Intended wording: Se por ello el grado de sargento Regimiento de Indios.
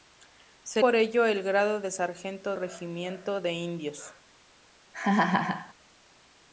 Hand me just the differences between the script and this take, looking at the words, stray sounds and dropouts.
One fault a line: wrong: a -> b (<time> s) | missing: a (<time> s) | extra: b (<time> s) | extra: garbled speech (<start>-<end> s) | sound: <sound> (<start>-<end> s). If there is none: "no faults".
sound: laugh (4.9-5.7 s)